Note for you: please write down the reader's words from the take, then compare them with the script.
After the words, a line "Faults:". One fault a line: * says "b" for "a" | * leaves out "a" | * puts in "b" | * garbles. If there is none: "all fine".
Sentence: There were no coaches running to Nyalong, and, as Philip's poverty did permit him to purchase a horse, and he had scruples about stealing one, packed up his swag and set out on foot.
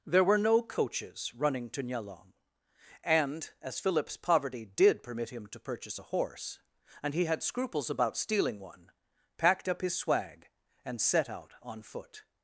There were no coaches running to Nyalong, and, as Philip's poverty did permit him to purchase a horse, and he had scruples about stealing one, packed up his swag and set out on foot.
Faults:
all fine